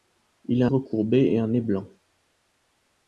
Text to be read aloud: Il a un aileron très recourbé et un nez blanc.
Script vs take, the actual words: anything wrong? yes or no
yes